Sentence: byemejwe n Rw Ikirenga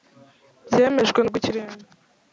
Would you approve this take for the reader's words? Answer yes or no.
yes